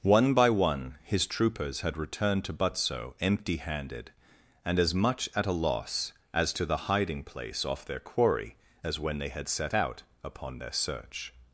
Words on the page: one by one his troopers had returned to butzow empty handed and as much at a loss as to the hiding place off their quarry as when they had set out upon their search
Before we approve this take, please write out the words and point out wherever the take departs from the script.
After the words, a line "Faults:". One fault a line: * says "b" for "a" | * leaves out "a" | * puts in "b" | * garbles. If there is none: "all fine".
one by one his troopers had returned to butzow empty handed and as much at a loss as to the hiding place off their quarry as when they had set out upon their search
Faults:
all fine